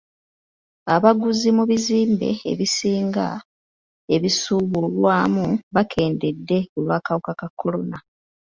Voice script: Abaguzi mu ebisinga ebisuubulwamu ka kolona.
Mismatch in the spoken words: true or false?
true